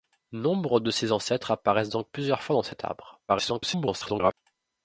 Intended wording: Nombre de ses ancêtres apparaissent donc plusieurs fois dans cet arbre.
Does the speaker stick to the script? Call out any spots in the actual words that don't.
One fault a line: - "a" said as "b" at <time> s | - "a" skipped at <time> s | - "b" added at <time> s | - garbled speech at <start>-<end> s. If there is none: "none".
- garbled speech at 3.3-4.3 s